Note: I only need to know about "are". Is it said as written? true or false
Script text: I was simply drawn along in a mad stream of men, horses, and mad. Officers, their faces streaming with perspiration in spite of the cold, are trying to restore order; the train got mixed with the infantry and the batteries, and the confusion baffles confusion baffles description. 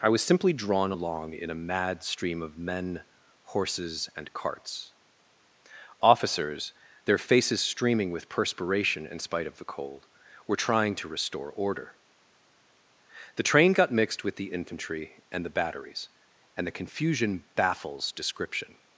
false